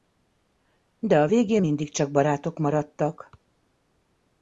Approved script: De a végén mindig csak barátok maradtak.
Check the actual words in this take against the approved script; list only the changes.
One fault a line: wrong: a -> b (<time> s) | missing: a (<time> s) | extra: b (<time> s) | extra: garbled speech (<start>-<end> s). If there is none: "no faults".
no faults